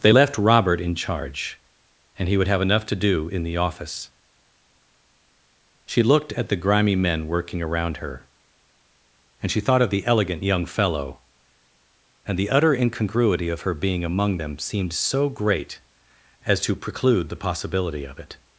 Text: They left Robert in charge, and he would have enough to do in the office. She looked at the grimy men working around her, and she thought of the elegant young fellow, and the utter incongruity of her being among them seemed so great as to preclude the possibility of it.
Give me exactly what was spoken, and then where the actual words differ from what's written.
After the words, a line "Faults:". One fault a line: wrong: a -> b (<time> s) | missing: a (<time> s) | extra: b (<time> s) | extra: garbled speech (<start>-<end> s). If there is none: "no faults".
They left Robert in charge, and he would have enough to do in the office. She looked at the grimy men working around her, and she thought of the elegant young fellow, and the utter incongruity of her being among them seemed so great as to preclude the possibility of it.
Faults:
no faults